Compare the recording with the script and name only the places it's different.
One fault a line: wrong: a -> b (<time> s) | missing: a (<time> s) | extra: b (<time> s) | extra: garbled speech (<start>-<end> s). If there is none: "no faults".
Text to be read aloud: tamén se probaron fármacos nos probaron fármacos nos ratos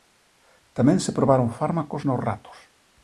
missing: probaron fármacos nos (2.2 s)